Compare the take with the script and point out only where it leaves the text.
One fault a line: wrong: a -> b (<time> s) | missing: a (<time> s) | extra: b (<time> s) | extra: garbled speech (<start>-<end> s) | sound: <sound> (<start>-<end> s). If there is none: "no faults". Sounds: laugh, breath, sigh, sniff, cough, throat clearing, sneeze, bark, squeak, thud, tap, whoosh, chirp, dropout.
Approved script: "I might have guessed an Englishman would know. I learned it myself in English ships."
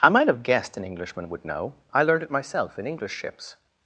no faults